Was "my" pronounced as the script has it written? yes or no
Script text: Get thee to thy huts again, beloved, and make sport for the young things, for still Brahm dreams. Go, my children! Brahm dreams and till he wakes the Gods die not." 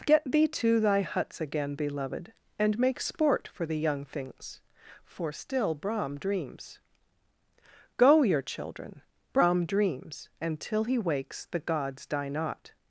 no